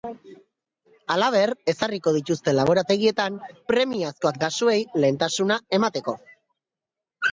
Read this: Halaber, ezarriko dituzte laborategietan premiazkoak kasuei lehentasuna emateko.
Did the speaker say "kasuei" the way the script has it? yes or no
yes